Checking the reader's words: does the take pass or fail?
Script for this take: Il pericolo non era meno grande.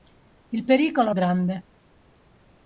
fail